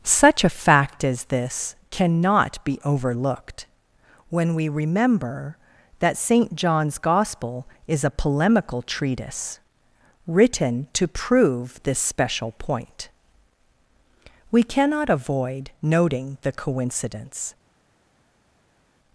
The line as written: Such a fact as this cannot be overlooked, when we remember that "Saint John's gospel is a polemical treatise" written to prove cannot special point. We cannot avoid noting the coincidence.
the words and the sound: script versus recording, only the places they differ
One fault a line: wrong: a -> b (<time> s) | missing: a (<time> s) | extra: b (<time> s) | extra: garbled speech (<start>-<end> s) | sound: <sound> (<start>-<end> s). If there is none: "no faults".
wrong: cannot -> this (11.8 s)